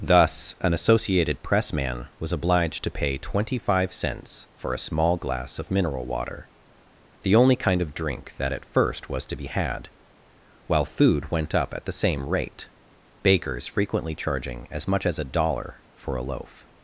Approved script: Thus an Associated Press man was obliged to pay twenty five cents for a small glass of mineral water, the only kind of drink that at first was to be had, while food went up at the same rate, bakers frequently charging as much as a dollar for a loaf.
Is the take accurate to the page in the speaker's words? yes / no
yes